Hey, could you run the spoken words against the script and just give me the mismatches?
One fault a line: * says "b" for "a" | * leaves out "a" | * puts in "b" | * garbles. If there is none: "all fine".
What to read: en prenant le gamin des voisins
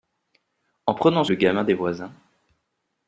all fine